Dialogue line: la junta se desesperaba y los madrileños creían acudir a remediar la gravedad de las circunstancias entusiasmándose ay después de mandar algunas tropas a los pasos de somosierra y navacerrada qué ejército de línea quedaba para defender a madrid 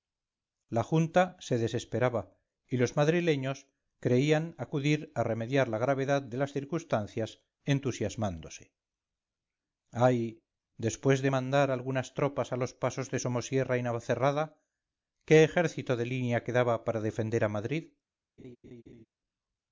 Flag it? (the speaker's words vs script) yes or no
no